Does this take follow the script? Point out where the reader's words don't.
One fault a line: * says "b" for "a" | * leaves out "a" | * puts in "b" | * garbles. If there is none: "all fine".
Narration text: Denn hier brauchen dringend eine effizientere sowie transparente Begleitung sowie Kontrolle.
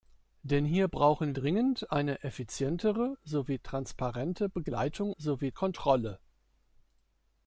all fine